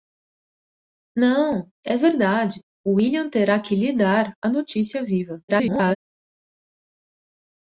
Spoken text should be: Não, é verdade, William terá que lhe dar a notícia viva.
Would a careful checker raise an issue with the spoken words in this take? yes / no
yes